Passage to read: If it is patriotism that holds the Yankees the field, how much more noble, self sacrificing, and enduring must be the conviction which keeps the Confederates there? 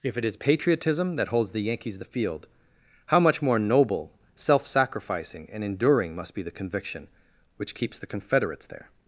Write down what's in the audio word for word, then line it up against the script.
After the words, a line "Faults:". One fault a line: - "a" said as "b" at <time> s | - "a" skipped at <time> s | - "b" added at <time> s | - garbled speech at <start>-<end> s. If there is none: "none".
If it is patriotism that holds the Yankees the field, how much more noble, self sacrificing, and enduring must be the conviction which keeps the Confederates there?
Faults:
none